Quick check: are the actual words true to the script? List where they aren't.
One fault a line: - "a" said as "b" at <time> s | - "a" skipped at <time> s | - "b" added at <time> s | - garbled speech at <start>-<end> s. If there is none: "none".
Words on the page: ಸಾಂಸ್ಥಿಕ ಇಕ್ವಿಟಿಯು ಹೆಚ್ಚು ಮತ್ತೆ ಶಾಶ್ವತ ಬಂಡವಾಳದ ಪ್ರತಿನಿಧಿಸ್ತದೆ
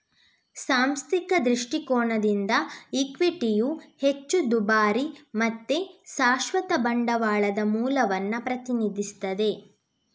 - "ದೃಷ್ಟಿಕೋನದಿಂದ" added at 1.4 s
- "ದುಬಾರಿ" added at 4.5 s
- "ಮೂಲವನ್ನ" added at 7.7 s